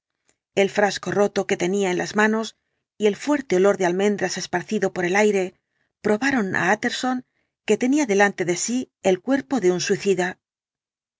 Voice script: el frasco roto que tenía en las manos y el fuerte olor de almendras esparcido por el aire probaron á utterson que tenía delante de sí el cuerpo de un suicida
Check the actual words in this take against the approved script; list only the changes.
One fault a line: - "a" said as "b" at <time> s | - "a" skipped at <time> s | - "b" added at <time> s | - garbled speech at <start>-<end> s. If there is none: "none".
none